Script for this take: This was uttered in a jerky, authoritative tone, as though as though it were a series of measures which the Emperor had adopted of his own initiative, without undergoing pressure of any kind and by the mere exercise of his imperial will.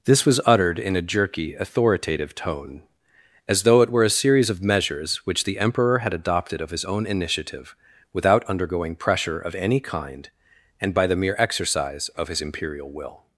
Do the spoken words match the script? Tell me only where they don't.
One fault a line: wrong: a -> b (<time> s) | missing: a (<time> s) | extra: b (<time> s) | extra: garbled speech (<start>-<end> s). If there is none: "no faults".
missing: as though (3.8 s)